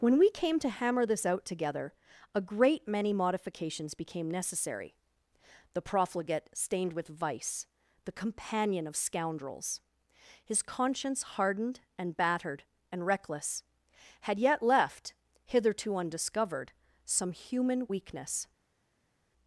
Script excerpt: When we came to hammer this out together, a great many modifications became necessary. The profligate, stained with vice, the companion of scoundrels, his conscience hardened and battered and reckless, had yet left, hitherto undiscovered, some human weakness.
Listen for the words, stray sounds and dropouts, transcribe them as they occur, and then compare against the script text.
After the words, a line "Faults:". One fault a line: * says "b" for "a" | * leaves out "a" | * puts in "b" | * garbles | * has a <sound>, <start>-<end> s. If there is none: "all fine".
When we came to hammer this out together, a great many modifications became necessary. The profligate, stained with vice, the companion of scoundrels, his conscience hardened and battered and reckless, had yet left, hitherto undiscovered, some human weakness.
Faults:
all fine